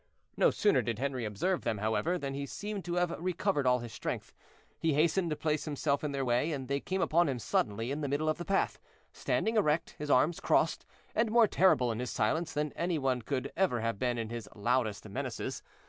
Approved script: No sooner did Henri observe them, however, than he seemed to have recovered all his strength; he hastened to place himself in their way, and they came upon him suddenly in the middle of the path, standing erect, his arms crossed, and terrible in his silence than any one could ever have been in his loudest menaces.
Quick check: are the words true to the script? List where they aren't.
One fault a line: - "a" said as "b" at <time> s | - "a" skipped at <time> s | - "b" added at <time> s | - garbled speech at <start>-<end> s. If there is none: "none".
- "more" added at 11.3 s